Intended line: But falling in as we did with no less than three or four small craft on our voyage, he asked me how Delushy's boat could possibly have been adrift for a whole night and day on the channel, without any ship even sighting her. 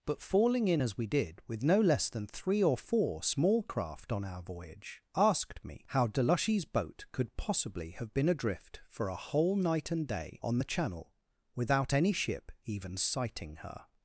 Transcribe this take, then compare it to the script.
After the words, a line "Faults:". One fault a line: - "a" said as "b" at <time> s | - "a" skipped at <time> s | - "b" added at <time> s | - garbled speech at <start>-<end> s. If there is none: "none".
But falling in as we did with no less than three or four small craft on our voyage, asked me how Delushy's boat could possibly have been adrift for a whole night and day on the channel, without any ship even sighting her.
Faults:
- "he" skipped at 5.0 s